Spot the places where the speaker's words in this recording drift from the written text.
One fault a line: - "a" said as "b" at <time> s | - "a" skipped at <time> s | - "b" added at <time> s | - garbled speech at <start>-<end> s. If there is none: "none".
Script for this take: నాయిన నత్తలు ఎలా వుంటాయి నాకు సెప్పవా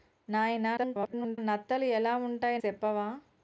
- garbled speech at 0.8-1.4 s
- "నాకు" skipped at 2.6 s